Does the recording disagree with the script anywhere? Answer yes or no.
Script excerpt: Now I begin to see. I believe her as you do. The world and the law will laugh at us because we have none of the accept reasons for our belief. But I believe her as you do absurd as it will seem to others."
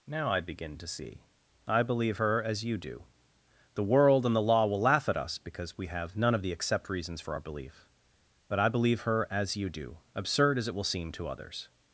no